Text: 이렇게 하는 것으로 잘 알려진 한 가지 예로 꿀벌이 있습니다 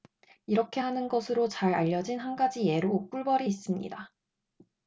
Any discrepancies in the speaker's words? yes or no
no